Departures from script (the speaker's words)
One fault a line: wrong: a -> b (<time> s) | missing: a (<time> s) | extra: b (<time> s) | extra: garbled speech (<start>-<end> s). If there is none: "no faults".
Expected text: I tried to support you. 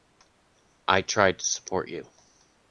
no faults